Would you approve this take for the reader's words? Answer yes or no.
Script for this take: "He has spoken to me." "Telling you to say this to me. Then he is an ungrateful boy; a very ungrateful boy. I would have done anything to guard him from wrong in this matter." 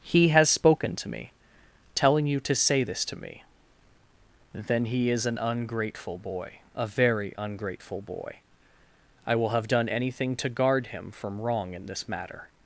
no